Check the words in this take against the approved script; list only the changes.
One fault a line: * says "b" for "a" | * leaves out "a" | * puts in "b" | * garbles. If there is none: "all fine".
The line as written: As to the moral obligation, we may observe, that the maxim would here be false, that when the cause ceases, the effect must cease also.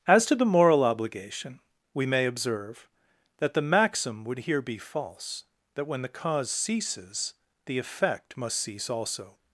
all fine